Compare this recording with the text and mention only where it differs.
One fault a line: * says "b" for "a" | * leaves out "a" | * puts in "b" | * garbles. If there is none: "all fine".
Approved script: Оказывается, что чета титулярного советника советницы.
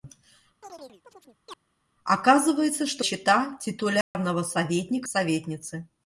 all fine